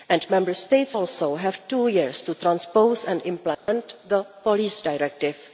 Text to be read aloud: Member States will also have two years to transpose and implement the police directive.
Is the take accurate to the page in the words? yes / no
no